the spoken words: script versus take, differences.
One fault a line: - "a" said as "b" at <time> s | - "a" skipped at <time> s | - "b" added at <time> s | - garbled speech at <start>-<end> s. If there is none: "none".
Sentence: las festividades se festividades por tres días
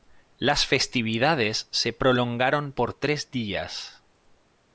- "festividades" said as "prolongaron" at 1.9 s